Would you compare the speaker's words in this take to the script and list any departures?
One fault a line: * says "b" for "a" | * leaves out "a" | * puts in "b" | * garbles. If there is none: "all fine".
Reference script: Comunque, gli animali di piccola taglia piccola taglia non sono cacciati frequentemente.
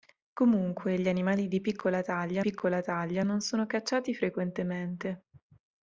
all fine